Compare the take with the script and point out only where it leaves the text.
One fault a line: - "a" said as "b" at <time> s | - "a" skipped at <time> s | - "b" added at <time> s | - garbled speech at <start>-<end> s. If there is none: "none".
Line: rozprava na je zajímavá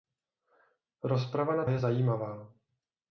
none